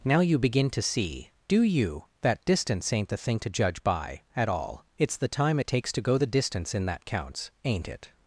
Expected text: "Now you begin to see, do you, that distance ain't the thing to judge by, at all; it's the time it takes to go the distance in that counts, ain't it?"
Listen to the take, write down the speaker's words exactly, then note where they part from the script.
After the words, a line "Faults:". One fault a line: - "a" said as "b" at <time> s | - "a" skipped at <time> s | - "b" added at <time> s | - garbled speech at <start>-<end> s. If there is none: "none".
"Now you begin to see, do you, that distance ain't the thing to judge by, at all; it's the time it takes to go the distance in that counts, ain't it?"
Faults:
none